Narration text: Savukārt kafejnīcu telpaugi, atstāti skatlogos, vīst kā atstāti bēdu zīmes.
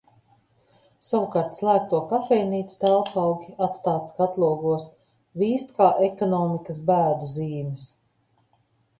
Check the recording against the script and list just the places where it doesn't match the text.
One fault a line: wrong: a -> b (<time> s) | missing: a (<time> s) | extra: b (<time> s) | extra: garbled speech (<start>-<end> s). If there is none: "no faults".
extra: slēgto (1.6 s)
wrong: atstāti -> ekonomikas (6.1 s)